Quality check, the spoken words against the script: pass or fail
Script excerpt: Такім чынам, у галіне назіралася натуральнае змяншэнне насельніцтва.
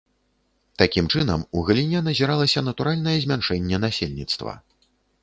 pass